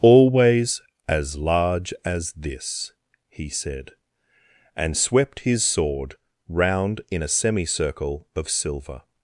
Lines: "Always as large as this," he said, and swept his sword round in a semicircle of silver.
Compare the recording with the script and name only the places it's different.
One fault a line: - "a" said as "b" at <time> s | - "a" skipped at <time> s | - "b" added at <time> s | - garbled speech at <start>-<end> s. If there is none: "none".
none